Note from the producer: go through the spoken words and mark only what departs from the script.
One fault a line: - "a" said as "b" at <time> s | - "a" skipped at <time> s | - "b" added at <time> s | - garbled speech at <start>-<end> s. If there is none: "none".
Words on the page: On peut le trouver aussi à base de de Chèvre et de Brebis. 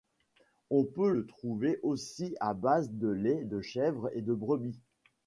- "lait" added at 3.1 s